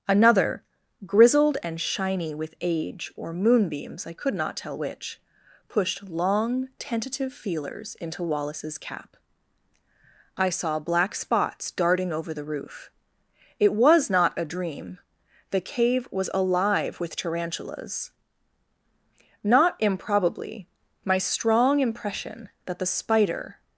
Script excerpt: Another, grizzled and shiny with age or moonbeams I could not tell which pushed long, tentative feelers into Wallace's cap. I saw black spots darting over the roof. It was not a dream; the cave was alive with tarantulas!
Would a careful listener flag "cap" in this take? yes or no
no